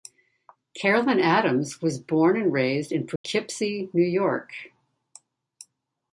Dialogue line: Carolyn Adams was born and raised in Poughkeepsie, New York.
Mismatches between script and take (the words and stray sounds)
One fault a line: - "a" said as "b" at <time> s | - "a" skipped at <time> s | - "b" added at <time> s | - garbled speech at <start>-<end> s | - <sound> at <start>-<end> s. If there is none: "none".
- dropout at 3.2-3.2 s